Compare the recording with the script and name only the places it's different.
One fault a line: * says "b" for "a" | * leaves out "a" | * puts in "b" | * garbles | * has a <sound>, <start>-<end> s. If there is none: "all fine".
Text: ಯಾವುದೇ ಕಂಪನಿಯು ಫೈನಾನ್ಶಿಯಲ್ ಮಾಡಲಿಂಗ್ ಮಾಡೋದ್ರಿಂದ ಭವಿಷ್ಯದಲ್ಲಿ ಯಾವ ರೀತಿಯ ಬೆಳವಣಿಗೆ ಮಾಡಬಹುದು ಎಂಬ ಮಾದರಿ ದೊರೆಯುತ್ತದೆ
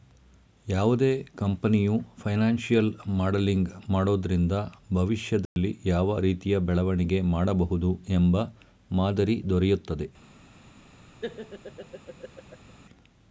* has a dropout, 5.5-5.6 s
* has a laugh, 11.2-12.7 s